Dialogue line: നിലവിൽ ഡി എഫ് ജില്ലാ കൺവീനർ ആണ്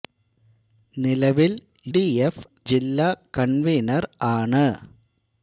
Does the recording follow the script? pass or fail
pass